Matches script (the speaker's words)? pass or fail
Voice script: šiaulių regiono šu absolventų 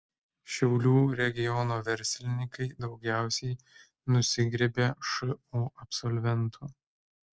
fail